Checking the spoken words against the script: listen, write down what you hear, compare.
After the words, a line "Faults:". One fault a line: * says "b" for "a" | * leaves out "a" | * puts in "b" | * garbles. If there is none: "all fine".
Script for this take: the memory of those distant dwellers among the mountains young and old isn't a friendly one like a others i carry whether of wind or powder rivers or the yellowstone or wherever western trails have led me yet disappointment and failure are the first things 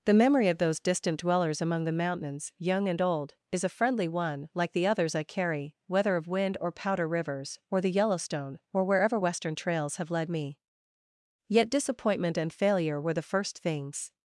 the memory of those distant dwellers among the mountains young and old is a friendly one like the others i carry whether of wind or powder rivers or the yellowstone or wherever western trails have led me yet disappointment and failure were the first things
Faults:
* says "is" for "isn't"
* says "the" for "a"
* says "were" for "are"